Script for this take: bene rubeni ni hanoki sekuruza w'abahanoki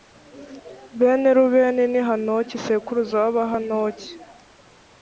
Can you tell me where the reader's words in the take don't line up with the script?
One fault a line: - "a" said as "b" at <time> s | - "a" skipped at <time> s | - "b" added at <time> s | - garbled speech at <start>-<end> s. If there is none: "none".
none